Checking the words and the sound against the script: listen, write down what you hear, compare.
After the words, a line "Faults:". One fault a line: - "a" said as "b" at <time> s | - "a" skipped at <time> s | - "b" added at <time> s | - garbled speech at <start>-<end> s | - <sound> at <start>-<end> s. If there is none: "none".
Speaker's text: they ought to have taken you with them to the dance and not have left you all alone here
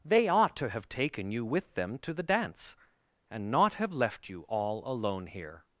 they ought to have taken you with them to the dance and not have left you all alone here
Faults:
none